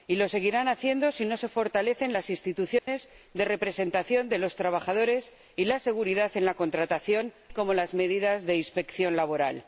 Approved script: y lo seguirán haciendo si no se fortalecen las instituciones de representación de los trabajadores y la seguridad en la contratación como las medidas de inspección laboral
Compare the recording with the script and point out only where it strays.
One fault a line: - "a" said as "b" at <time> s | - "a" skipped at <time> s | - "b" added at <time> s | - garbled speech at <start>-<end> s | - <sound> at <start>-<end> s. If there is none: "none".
- dropout at 2.8-2.9 s